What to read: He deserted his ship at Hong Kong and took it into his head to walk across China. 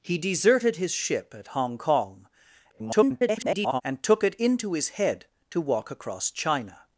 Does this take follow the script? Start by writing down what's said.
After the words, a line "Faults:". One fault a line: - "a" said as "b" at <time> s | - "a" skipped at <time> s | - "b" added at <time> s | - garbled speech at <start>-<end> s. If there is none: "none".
He deserted his ship at Hong Kong [garbled] and took it into his head to walk across China.
Faults:
- garbled speech at 2.7-3.8 s